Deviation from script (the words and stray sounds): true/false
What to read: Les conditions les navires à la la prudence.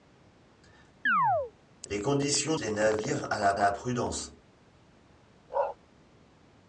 true